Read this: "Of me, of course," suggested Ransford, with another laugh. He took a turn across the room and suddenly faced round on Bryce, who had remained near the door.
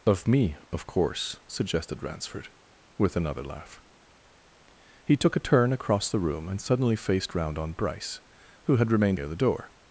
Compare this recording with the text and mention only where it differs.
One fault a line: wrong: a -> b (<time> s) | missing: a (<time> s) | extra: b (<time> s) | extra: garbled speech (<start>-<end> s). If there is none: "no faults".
no faults